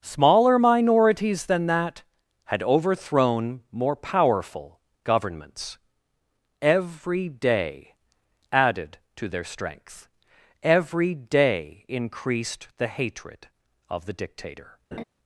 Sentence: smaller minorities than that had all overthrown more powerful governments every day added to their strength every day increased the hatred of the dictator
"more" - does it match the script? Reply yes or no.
yes